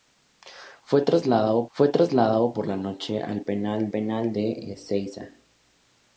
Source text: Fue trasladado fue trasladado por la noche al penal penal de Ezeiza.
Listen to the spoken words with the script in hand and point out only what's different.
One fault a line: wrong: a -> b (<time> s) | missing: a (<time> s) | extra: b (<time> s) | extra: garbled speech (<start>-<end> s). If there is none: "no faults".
no faults